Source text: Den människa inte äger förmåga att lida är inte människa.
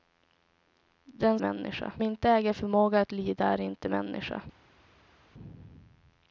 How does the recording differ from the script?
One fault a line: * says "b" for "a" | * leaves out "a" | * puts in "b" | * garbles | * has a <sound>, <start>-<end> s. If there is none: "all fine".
all fine